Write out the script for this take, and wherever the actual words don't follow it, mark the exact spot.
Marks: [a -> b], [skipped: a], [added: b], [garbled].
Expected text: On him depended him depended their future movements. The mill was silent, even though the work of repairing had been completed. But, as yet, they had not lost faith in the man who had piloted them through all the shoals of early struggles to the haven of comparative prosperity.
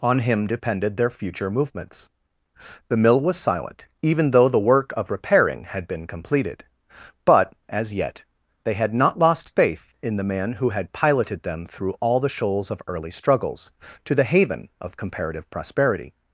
On him depended [skipped: him depended] their future movements. The mill was silent, even though the work of repairing had been completed. But, as yet, they had not lost faith in the man who had piloted them through all the shoals of early struggles to the haven of comparative prosperity.